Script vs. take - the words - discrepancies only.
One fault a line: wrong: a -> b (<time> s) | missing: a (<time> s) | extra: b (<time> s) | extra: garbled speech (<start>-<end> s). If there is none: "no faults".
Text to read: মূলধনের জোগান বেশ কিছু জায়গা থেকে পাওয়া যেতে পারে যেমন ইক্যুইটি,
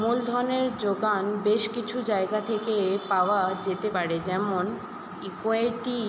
no faults